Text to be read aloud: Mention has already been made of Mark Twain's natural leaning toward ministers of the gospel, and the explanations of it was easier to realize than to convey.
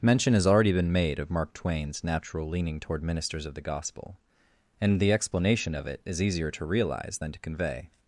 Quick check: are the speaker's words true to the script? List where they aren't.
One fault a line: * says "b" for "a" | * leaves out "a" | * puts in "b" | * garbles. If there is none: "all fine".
* says "explanation" for "explanations"
* says "is" for "was"